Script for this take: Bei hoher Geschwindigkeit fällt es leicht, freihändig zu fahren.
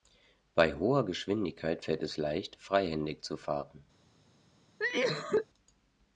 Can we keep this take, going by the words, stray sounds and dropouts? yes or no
no